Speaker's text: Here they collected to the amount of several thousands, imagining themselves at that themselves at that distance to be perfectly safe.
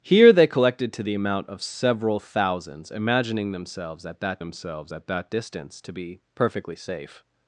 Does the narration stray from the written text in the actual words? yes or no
no